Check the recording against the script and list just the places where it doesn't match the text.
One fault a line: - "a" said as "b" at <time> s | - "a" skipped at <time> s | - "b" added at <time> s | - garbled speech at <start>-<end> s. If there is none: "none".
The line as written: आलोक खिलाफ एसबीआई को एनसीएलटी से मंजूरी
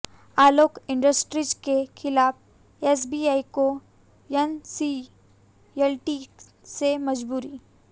- "इंडस्ट्रीज के" added at 0.9 s